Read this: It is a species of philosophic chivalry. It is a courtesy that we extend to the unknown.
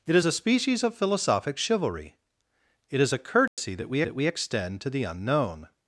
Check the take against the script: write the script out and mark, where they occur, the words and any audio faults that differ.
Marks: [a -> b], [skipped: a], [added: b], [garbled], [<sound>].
It is a species of philosophic chivalry. It is a courtesy [dropout] that we [added: that we] extend to the unknown.